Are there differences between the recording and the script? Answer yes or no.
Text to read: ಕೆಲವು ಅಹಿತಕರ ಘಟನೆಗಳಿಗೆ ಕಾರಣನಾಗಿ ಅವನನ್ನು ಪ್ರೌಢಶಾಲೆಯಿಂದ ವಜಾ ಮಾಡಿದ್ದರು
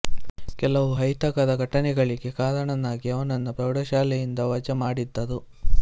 no